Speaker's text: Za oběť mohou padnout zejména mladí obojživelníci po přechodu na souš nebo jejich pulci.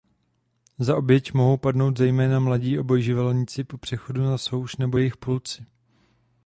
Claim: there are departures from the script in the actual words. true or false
false